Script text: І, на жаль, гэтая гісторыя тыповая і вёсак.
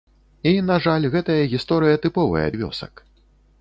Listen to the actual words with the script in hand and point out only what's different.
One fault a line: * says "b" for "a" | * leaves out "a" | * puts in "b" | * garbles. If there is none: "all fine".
all fine